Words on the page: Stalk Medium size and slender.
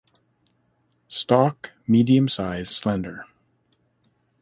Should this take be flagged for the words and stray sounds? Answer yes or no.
yes